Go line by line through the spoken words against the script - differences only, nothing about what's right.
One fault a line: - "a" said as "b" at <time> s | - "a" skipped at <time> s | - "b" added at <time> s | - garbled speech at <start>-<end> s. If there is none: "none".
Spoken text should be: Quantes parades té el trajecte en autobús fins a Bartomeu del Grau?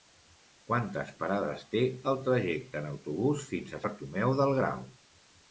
none